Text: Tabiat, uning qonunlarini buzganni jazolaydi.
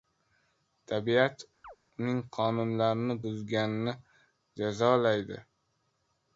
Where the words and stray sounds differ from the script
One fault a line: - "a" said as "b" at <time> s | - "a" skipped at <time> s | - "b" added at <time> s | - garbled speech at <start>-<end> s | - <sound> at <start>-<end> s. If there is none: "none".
- chirp at 1.6-1.8 s